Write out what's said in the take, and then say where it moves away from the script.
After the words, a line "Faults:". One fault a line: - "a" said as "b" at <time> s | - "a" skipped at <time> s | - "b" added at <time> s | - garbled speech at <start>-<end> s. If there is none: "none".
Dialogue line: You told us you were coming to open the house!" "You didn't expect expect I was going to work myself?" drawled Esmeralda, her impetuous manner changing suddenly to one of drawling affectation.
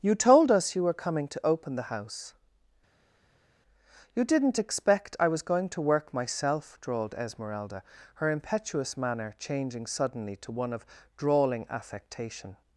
You told us you were coming to open the house!" "You didn't expect I was going to work myself?" drawled Esmeralda, her impetuous manner changing suddenly to one of drawling affectation.
Faults:
- "expect" skipped at 5.2 s